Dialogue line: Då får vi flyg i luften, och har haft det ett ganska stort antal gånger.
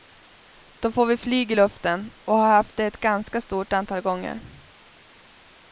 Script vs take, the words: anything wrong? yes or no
no